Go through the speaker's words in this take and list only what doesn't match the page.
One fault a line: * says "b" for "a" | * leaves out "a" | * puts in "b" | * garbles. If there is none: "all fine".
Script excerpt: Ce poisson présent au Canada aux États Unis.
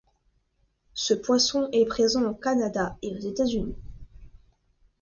* puts in "est"
* puts in "et"